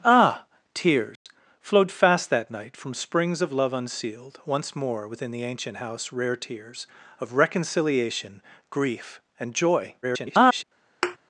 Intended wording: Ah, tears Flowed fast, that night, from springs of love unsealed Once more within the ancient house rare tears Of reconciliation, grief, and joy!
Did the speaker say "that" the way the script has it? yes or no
yes